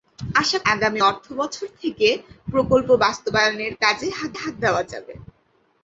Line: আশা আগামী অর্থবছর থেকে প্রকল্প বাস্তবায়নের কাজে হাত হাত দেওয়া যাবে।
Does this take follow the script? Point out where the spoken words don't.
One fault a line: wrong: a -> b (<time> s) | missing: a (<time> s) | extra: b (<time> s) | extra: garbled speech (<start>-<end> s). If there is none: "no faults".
no faults